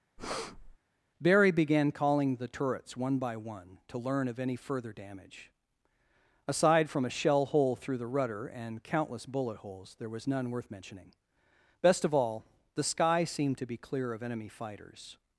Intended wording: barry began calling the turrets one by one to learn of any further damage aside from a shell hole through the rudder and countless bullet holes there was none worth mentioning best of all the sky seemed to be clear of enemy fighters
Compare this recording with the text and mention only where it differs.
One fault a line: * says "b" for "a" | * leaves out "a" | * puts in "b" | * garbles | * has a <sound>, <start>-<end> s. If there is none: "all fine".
* has a breath, 0.2-0.8 s